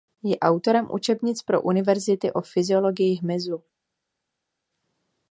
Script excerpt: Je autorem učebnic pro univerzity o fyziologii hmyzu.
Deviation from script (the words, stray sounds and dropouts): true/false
false